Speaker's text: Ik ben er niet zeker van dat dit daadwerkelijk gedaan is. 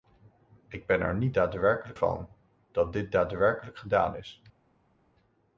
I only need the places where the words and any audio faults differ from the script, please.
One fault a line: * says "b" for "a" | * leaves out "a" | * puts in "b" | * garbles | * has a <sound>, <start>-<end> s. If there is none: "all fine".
* says "daadwerkelijk" for "zeker"